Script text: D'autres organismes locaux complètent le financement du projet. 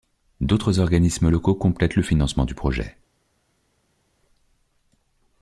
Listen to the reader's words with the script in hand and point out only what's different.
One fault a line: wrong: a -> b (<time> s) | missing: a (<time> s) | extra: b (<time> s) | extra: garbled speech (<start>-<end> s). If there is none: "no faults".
no faults